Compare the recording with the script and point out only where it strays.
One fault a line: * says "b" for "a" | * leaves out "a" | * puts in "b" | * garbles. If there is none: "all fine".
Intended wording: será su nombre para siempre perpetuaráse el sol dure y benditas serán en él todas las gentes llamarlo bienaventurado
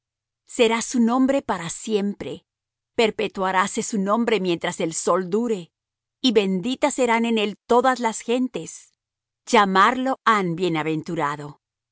* puts in "su nombre mientras"
* puts in "han"